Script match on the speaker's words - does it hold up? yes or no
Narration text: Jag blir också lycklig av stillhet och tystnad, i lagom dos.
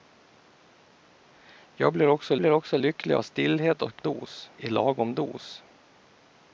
no